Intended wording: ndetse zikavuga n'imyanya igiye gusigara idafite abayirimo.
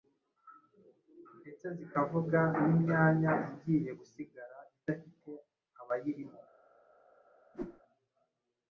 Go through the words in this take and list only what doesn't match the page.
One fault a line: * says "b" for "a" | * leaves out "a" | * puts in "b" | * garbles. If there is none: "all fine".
all fine